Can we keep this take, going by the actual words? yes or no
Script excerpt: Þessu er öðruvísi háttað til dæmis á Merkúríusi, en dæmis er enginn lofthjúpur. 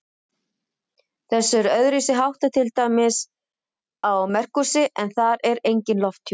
no